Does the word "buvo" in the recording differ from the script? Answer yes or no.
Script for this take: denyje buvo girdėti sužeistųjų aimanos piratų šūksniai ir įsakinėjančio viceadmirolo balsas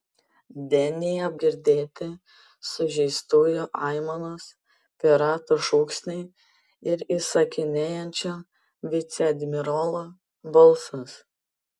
yes